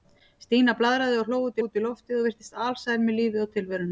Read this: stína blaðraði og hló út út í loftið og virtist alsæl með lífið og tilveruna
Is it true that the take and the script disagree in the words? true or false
false